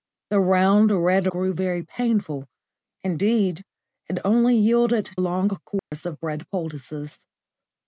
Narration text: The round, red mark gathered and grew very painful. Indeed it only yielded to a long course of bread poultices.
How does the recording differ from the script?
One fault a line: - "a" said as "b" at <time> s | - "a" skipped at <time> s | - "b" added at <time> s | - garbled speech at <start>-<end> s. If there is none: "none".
- "mark gathered and" skipped at 1.3 s
- "to" skipped at 5.1 s